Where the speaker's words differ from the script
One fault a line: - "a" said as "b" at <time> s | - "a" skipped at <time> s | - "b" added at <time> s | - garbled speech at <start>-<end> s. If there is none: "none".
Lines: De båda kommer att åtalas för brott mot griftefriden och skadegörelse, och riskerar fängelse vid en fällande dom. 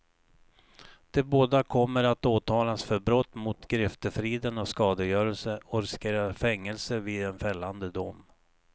none